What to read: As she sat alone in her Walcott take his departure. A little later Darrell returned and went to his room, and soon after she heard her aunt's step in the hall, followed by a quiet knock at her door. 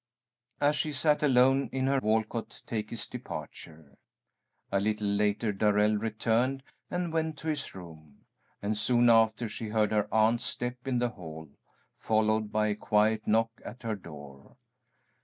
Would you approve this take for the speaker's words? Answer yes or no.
yes